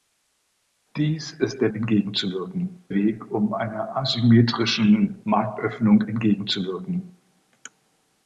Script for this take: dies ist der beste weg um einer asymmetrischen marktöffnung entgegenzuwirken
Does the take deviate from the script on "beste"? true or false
true